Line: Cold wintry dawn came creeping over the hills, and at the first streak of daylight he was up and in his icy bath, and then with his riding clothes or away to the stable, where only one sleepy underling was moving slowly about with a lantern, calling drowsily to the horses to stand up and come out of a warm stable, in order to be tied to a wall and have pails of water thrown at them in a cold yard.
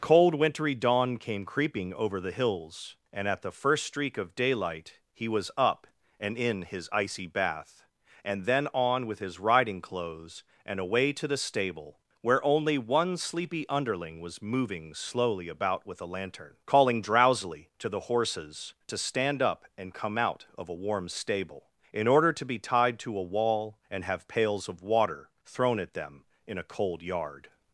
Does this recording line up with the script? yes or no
no